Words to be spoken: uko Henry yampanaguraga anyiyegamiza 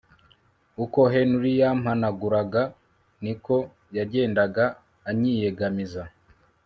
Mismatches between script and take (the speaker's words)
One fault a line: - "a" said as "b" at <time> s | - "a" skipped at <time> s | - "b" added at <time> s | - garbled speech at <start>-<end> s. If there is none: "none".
- "niko yagendaga" added at 3.2 s